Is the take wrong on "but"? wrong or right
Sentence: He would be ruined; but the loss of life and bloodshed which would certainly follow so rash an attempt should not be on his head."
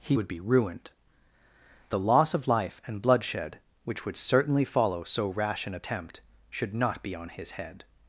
wrong